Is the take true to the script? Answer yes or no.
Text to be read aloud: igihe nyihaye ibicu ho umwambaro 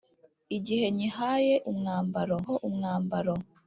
no